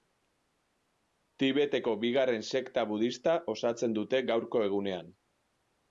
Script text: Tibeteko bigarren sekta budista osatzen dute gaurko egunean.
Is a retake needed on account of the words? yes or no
no